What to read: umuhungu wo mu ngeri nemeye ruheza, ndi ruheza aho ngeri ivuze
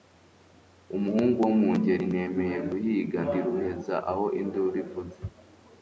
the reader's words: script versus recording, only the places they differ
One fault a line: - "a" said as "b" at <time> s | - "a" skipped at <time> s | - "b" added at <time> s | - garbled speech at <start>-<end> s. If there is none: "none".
- "ruheza" said as "guhiga" at 2.7 s
- "ngeri" said as "induru" at 4.4 s